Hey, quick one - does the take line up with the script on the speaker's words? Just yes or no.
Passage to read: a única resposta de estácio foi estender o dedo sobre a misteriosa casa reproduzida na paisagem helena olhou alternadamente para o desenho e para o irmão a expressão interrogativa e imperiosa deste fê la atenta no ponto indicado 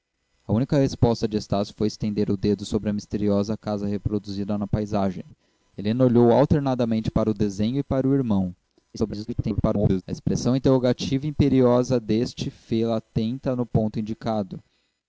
no